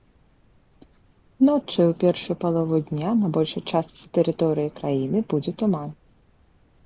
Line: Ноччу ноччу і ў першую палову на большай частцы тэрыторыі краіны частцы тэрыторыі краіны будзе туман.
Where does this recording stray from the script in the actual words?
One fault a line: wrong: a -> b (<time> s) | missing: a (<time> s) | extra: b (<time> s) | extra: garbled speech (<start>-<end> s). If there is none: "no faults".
missing: ноччу (1.8 s)
extra: дня (2.9 s)
missing: частцы тэрыторыі краіны (5.2 s)